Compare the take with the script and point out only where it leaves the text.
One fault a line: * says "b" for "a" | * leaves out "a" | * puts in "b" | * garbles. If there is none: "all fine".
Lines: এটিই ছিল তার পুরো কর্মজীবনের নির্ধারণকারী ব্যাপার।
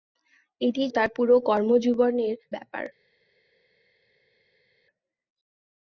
* leaves out "ছিল"
* leaves out "নির্ধারণকারী"